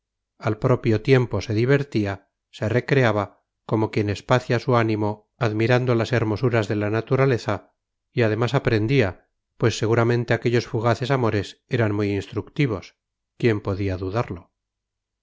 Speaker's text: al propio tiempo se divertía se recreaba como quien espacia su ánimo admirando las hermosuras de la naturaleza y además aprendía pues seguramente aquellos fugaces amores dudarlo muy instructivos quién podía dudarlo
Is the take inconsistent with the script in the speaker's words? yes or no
yes